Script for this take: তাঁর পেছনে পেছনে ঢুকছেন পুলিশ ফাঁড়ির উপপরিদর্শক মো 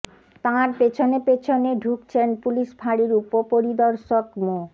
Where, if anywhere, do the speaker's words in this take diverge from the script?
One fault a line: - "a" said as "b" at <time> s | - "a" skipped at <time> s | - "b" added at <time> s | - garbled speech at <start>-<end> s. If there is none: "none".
none